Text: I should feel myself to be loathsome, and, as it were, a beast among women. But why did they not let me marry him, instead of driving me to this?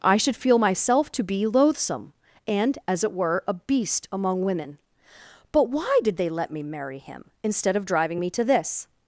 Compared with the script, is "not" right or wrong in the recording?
wrong